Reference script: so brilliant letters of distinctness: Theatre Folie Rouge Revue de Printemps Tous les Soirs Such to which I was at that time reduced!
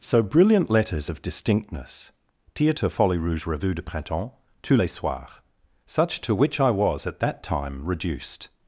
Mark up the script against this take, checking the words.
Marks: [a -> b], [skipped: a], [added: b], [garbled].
so brilliant letters of distinctness: Theatre Folie Rouge Revue de Printemps Tous les Soirs Such to which I was at that time reduced!